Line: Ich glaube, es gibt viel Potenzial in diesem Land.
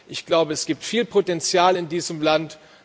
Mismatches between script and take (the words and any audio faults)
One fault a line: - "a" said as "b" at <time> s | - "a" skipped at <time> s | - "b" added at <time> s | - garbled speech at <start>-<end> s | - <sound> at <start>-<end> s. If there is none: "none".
none